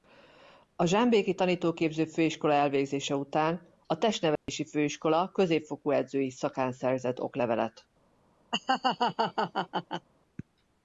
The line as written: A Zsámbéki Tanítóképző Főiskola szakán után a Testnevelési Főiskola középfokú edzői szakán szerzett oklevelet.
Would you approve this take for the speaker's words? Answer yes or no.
no